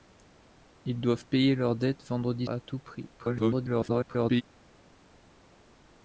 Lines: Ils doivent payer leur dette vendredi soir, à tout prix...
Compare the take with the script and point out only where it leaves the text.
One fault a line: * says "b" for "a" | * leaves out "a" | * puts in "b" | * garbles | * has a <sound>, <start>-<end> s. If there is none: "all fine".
* leaves out "soir"
* garbles